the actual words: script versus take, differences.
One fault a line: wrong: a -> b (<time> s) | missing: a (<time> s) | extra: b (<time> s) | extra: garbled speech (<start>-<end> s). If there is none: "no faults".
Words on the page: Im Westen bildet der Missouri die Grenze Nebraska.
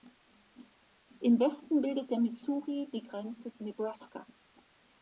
no faults